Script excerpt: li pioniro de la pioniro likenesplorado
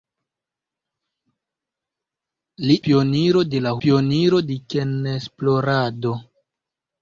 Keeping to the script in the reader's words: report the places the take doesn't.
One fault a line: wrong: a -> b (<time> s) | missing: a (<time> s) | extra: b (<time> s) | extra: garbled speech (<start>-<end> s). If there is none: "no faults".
no faults